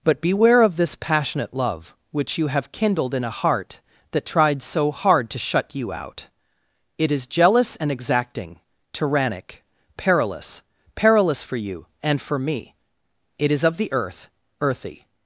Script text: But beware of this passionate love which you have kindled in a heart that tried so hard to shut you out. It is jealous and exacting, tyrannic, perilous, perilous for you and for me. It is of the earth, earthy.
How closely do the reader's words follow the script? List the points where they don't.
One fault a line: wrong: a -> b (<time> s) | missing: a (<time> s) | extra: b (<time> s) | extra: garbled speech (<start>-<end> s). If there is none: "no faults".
no faults